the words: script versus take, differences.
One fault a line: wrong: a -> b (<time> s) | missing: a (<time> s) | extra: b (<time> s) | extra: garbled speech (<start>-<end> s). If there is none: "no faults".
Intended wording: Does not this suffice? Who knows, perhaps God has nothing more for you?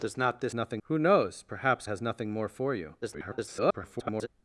wrong: suffice -> nothing (0.5 s)
missing: God (1.9 s)
extra: garbled speech (3.0-4.3 s)